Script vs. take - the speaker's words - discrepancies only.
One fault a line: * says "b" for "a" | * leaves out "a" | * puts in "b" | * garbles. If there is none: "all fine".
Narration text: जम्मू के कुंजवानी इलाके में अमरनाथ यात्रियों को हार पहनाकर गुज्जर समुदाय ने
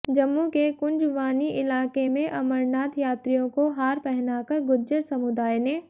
all fine